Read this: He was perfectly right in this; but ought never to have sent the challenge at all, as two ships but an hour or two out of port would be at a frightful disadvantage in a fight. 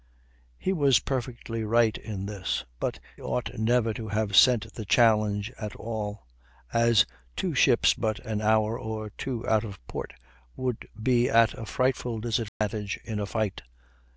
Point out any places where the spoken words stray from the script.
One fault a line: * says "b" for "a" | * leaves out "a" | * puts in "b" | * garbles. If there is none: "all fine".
all fine